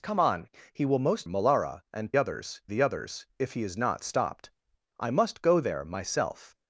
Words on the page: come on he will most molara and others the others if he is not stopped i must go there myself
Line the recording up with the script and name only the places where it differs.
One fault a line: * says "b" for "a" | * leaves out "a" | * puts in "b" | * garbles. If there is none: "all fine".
all fine